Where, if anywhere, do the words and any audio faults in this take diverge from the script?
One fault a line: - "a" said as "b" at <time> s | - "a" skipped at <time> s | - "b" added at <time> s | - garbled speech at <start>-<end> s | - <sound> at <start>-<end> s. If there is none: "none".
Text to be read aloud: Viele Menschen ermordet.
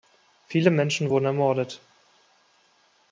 - "wurden" added at 1.1 s